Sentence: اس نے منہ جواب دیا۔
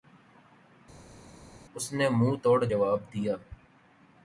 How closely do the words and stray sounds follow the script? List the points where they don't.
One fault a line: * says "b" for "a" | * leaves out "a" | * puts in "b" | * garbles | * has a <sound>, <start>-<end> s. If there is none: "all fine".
* puts in "توڑ"